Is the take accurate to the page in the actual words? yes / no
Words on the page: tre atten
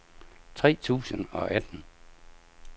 no